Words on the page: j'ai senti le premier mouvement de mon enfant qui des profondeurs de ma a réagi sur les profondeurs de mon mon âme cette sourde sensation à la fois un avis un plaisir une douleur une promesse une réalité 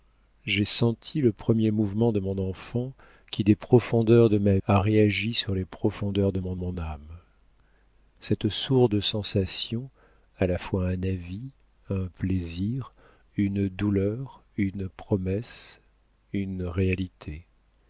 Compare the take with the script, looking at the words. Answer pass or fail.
pass